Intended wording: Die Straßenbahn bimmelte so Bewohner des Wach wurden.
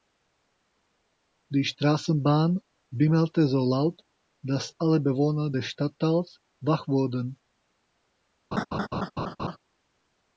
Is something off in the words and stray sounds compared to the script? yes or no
yes